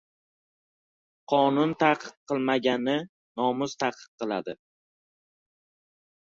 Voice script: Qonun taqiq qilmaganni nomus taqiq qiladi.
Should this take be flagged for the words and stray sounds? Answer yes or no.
no